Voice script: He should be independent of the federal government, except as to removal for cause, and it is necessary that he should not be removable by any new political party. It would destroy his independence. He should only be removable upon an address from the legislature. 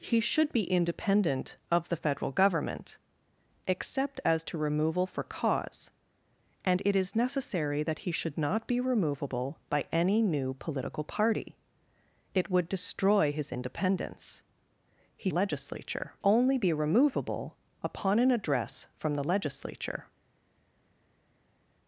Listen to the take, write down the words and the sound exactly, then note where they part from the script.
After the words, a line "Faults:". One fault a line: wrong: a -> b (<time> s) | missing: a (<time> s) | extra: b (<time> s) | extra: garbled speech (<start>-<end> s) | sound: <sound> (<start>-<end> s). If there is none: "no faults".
He should be independent of the federal government, except as to removal for cause, and it is necessary that he should not be removable by any new political party. It would destroy his independence. He legislature only be removable upon an address from the legislature.
Faults:
wrong: should -> legislature (15.3 s)